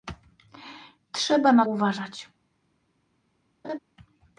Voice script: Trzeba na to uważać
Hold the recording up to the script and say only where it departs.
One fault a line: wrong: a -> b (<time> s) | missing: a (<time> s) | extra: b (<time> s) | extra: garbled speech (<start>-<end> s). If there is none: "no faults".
missing: to (1.6 s)